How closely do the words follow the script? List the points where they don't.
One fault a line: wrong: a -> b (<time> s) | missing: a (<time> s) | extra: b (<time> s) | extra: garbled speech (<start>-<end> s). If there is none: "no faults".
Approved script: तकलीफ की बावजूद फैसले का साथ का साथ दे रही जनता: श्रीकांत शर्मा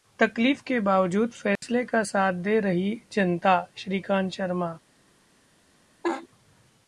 wrong: की -> के (0.6 s)
missing: का साथ (2.3 s)